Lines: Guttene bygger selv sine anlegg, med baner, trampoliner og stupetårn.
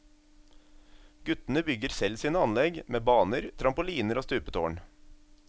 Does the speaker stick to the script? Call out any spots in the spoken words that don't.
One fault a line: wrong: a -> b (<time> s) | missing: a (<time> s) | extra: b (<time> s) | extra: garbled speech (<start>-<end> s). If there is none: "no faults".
no faults